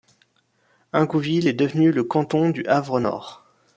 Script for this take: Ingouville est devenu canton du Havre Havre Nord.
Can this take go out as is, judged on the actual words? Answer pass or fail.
fail